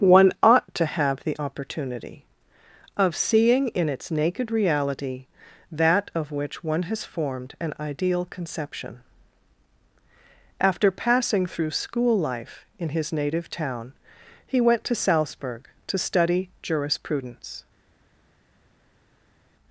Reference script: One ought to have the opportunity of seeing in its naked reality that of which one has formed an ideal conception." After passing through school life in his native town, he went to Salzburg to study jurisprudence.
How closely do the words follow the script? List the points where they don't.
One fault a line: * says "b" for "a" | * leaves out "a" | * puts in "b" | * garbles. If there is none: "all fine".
all fine